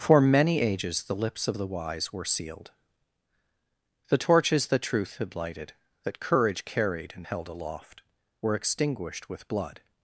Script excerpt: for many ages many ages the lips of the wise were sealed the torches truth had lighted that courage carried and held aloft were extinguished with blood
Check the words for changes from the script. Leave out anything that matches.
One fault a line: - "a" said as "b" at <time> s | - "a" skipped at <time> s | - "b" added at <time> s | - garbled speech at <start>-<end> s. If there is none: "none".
- "many ages" skipped at 1.0 s
- "that" added at 4.7 s